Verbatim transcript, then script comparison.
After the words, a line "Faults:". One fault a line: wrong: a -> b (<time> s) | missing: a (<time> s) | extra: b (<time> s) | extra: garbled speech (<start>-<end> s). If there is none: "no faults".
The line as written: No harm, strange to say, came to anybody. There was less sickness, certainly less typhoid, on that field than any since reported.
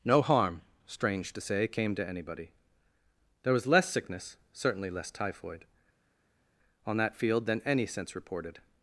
No harm, strange to say, came to anybody. There was less sickness, certainly less typhoid, on that field than any since reported.
Faults:
no faults